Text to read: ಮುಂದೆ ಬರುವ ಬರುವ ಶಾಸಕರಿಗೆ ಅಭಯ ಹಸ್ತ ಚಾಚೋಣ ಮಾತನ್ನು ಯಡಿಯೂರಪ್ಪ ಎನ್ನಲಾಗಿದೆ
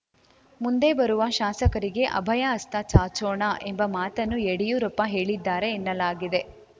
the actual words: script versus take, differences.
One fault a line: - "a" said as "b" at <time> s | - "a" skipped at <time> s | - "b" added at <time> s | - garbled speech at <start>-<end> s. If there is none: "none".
- "ಬರುವ" skipped at 1.2 s
- "ಎಂಬ" added at 3.6 s
- "ಹೇಳಿದ್ದಾರೆ" added at 5.1 s